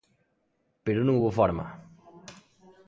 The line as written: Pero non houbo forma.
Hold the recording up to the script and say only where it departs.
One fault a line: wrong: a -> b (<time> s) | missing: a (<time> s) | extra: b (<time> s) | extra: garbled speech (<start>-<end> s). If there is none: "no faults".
no faults